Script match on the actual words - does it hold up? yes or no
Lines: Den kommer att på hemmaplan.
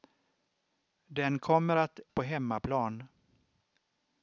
yes